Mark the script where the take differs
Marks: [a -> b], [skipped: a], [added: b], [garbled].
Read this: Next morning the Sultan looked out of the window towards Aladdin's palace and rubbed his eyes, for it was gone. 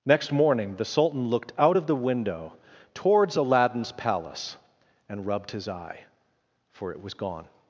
Next morning the Sultan looked out of the window towards Aladdin's palace and rubbed his [eyes, -> eye] for it was gone.